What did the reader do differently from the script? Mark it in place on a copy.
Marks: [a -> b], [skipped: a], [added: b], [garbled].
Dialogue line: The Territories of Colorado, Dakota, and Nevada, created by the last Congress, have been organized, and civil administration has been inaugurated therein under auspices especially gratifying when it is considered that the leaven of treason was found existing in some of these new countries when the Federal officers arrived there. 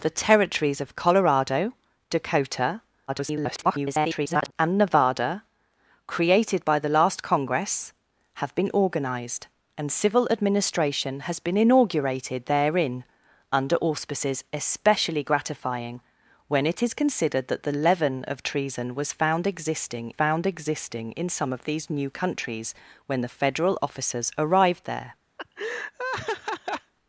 The Territories of Colorado, Dakota, [garbled] and Nevada, created by the last Congress, have been organized, and civil administration has been inaugurated therein under auspices especially gratifying when it is considered that the leaven of treason was found existing [added: found existing] in some of these new countries when the Federal officers arrived there.